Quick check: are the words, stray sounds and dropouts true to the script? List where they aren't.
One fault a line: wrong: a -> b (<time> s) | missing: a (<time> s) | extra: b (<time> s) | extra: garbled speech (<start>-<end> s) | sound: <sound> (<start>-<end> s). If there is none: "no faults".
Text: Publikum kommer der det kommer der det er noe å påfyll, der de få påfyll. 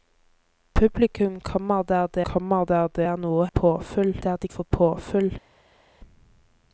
no faults